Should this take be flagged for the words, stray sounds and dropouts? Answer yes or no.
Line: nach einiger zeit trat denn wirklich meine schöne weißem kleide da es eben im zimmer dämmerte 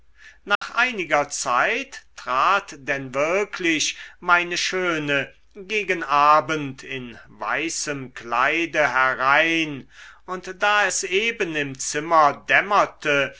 yes